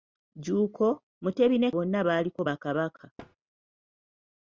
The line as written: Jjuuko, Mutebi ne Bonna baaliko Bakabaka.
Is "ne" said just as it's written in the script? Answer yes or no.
yes